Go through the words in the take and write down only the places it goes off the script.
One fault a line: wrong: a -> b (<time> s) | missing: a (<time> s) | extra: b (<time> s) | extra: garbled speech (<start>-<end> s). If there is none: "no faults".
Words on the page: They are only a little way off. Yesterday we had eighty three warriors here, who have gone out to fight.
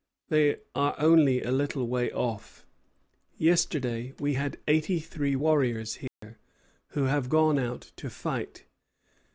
no faults